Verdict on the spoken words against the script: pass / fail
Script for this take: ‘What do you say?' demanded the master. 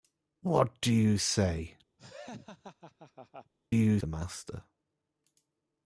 fail